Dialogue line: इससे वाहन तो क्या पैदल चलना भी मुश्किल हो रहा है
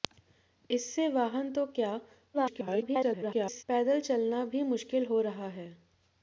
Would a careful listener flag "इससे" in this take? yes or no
no